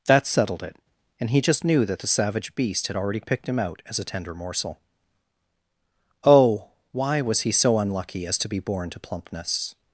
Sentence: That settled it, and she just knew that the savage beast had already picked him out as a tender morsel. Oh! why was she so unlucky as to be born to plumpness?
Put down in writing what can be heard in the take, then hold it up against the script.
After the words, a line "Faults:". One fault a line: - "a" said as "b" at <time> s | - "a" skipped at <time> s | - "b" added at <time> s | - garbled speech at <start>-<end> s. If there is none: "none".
That settled it, and he just knew that the savage beast had already picked him out as a tender morsel. Oh! why was he so unlucky as to be born to plumpness?
Faults:
- "she" said as "he" at 1.3 s
- "she" said as "he" at 7.4 s